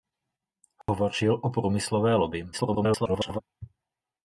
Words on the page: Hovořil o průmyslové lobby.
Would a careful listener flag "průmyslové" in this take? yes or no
no